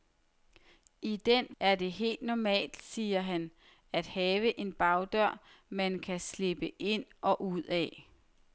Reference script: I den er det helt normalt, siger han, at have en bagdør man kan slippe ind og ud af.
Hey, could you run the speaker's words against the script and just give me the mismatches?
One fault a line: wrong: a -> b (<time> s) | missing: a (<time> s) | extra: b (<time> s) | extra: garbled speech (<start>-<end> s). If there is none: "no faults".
no faults